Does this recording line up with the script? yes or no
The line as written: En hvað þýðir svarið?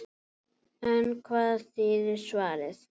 yes